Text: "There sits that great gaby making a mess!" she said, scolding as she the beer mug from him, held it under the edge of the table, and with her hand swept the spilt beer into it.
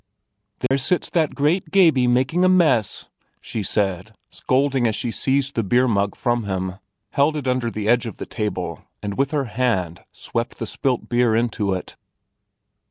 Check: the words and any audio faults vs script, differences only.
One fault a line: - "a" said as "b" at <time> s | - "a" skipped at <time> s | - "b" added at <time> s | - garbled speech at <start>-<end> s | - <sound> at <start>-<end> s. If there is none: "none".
- dropout at 0.7-0.7 s
- "seized" added at 5.1 s